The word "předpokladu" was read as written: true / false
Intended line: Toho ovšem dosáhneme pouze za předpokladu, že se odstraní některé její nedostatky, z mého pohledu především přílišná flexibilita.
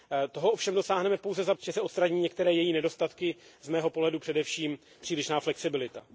false